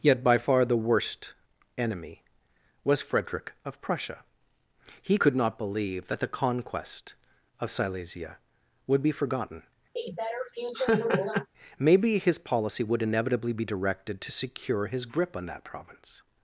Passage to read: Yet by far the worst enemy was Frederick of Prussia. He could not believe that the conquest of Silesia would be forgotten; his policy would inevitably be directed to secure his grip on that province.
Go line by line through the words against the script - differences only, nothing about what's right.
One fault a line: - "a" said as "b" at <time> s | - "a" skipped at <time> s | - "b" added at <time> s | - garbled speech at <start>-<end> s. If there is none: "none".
- "maybe" added at 11.8 s